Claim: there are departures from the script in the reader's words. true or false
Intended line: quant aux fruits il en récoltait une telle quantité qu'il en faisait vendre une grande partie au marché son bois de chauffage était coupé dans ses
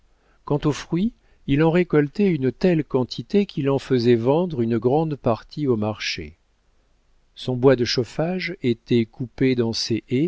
false